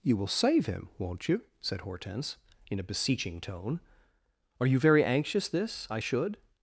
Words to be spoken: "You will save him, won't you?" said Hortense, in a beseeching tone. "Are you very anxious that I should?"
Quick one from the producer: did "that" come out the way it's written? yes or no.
no